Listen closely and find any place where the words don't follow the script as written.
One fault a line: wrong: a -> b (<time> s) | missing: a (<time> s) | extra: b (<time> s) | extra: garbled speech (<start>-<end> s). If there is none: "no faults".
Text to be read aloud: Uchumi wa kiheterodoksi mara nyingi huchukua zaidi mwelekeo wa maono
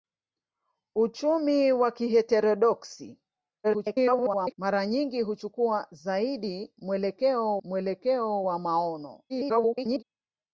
extra: garbled speech (3.6-4.5 s)
extra: mwelekeo (7.6 s)
extra: garbled speech (9.3-10.0 s)